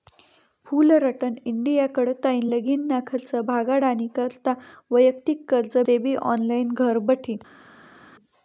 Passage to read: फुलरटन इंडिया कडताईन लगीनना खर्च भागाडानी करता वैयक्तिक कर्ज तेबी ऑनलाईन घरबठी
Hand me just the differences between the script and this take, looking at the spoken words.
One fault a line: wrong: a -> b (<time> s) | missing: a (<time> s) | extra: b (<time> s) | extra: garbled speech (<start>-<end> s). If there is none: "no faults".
no faults